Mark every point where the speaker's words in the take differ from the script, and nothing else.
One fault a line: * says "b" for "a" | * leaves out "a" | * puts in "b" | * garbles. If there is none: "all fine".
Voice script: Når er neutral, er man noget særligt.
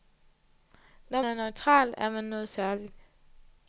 all fine